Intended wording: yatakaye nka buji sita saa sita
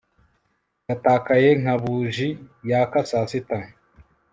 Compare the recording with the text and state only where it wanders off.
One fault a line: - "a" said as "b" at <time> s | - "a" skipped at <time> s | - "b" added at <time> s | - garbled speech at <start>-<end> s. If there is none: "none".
- "sita" said as "yaka" at 2.7 s